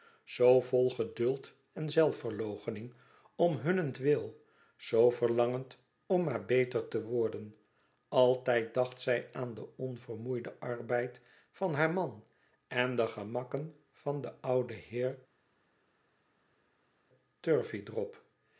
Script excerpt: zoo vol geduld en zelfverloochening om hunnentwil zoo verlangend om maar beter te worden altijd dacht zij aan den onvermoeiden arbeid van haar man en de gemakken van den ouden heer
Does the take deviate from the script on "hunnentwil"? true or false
false